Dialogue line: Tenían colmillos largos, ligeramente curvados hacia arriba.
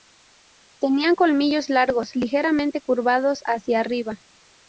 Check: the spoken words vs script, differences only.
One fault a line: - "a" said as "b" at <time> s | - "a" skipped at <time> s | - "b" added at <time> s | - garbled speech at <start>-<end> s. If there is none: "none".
none